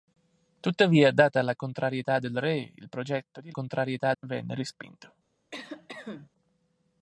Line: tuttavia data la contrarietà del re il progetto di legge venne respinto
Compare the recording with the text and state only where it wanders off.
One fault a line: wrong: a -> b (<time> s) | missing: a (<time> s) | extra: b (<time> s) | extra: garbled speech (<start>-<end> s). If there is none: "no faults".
wrong: legge -> contrarietà (3.5 s)